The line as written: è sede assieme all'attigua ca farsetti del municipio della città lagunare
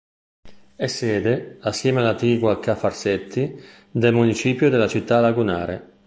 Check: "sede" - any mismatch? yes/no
no